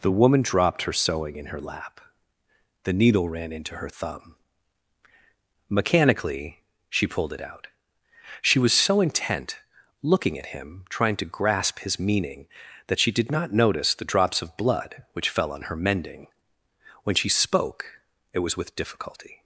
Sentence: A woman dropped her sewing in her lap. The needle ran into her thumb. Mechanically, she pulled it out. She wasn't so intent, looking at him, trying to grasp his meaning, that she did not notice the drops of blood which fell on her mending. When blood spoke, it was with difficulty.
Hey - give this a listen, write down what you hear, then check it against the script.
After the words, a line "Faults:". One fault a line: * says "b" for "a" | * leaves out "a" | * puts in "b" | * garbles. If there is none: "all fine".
The woman dropped her sewing in her lap. The needle ran into her thumb. Mechanically, she pulled it out. She was so intent, looking at him, trying to grasp his meaning, that she did not notice the drops of blood which fell on her mending. When she spoke, it was with difficulty.
Faults:
* says "The" for "A"
* says "was" for "wasn't"
* says "she" for "blood"